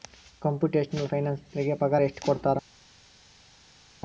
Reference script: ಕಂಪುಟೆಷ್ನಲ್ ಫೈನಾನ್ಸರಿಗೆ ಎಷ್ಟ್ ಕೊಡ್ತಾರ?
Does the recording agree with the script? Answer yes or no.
no